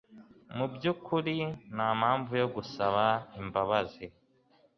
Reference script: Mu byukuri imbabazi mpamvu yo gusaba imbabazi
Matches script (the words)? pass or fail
fail